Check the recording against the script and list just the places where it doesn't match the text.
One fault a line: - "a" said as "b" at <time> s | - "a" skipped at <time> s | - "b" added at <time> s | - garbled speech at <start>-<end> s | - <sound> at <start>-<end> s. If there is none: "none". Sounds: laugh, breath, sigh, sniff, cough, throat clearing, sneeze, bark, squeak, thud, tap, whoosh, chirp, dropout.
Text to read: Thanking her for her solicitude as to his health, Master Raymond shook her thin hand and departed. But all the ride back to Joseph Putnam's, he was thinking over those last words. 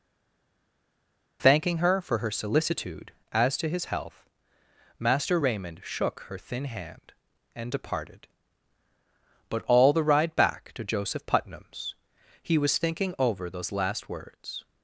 none